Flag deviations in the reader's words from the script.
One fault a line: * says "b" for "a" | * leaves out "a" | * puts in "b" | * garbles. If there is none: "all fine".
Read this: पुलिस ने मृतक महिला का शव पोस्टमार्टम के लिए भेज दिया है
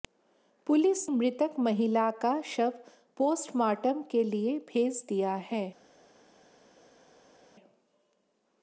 * leaves out "ने"